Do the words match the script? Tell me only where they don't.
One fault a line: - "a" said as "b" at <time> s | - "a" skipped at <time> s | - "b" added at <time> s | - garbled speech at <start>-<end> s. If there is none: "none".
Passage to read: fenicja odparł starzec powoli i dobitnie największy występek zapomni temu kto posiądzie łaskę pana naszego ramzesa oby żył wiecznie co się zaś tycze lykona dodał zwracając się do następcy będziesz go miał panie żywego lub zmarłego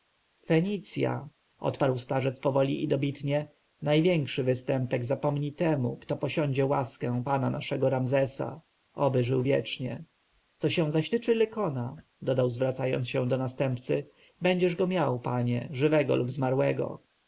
none